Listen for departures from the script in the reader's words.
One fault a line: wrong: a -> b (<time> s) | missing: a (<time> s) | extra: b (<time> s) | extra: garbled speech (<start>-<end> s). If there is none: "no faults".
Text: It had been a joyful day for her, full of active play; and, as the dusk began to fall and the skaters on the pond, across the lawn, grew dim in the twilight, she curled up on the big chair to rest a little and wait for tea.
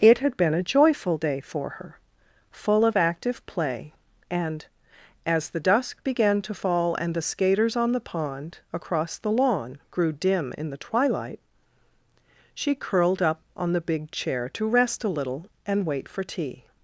no faults